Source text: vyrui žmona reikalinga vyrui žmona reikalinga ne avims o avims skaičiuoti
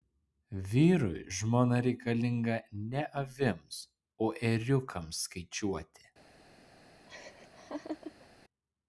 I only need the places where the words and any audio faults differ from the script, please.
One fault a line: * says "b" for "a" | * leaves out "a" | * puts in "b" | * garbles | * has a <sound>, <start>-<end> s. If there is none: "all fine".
* leaves out "vyrui žmona reikalinga"
* says "ėriukams" for "avims"
* has a laugh, 7.1-8.3 s